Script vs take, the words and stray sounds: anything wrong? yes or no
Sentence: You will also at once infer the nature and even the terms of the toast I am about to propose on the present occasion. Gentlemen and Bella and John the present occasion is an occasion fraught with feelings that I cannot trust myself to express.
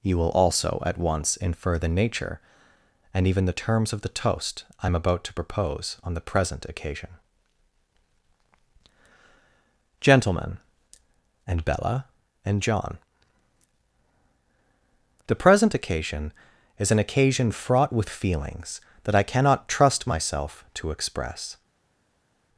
no